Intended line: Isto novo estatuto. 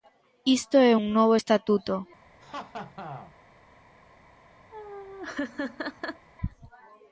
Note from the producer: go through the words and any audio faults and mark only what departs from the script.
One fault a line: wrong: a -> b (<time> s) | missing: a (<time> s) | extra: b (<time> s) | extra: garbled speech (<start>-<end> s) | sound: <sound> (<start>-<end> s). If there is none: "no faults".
extra: é un (0.8 s)
sound: laugh (2.4-3.3 s)
sound: laugh (4.7-6.3 s)